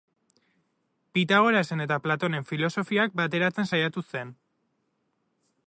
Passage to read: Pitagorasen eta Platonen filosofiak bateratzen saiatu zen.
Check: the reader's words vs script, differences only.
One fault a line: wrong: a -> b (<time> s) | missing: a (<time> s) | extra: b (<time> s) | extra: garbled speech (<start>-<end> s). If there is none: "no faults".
no faults